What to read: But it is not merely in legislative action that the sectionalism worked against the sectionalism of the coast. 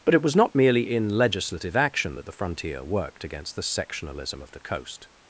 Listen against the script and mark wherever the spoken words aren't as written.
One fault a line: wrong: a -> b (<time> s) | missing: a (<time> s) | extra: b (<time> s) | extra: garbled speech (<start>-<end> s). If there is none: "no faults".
wrong: is -> was (0.2 s)
wrong: sectionalism -> frontier (2.3 s)